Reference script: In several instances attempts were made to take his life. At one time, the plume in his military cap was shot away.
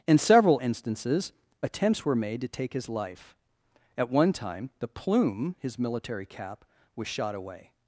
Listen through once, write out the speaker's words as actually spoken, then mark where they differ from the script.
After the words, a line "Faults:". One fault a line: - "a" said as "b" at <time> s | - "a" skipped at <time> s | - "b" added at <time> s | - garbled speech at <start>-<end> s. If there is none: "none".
In several instances attempts were made to take his life. At one time, the plume his military cap was shot away.
Faults:
- "in" skipped at 5.5 s